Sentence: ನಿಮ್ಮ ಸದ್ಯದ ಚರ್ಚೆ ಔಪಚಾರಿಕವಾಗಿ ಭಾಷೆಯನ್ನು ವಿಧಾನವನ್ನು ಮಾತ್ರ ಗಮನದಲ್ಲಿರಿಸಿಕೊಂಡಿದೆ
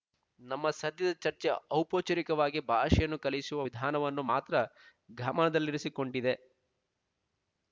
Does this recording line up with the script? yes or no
no